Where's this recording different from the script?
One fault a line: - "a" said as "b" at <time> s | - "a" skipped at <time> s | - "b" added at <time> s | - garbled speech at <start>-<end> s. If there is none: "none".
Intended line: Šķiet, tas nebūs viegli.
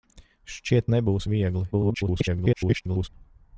- "tas" skipped at 0.9 s
- garbled speech at 1.7-3.1 s